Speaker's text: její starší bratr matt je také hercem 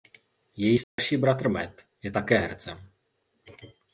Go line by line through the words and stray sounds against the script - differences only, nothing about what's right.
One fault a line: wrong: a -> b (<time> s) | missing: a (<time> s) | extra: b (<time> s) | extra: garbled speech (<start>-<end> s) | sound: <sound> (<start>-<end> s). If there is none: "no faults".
sound: dropout (0.8-1.0 s)